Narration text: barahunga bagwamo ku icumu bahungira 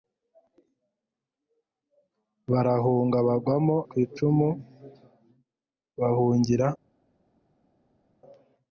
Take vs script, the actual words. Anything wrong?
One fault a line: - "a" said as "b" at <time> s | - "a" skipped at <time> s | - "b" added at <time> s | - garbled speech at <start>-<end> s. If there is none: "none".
none